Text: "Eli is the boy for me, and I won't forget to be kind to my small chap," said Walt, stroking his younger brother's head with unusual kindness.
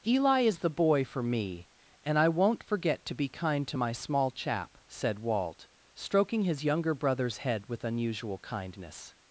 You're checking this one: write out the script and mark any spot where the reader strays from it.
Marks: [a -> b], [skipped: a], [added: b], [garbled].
"Eli is the boy for me, and I won't forget to be kind to my small chap," said Walt, stroking his younger brother's head with unusual kindness.